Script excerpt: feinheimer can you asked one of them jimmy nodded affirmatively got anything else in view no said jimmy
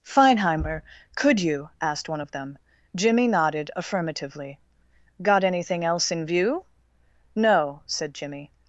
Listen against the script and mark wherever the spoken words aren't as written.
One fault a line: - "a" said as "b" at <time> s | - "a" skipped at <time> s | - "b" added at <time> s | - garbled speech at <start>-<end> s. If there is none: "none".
- "can" said as "could" at 1.1 s